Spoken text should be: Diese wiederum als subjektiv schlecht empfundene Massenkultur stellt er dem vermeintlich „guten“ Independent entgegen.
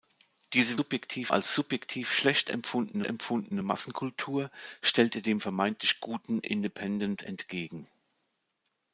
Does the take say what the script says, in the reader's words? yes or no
no